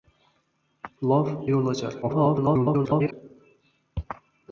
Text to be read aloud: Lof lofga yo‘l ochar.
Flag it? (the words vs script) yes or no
yes